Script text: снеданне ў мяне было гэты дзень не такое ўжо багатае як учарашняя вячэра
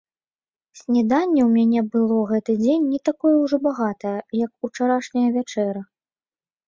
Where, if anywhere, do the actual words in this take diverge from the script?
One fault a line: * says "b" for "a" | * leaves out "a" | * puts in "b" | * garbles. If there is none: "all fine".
all fine